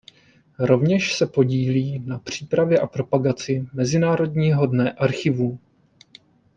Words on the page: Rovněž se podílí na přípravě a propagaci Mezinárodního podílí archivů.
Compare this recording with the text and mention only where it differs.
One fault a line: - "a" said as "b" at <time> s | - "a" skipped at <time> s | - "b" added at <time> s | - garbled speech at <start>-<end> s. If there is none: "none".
- "podílí" said as "dne" at 4.7 s